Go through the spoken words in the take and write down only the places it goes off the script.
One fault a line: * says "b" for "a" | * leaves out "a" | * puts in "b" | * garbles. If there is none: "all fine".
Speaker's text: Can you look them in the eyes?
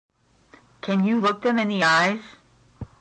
all fine